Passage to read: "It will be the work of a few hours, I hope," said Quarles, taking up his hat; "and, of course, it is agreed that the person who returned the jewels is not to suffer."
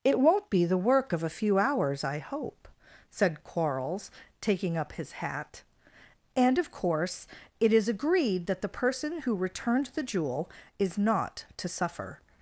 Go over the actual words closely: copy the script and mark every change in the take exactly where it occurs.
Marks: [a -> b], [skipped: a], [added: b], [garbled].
"It [will -> won't] be the work of a few hours, I hope," said Quarles, taking up his hat; "and, of course, it is agreed that the person who returned the [jewels -> jewel] is not to suffer."